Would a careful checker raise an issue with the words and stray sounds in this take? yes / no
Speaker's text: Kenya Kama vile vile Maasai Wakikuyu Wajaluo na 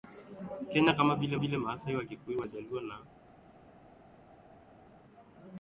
no